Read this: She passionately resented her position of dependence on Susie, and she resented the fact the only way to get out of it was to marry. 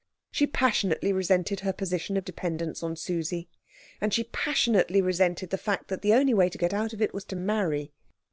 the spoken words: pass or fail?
fail